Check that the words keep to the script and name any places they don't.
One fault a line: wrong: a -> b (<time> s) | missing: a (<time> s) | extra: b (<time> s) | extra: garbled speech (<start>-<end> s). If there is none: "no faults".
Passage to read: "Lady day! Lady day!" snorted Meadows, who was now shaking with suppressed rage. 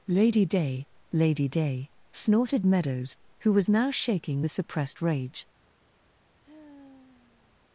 no faults